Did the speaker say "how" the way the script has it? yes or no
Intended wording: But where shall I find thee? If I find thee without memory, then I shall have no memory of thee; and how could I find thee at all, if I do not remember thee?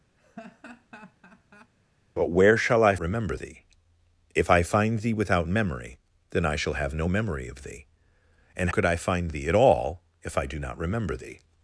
no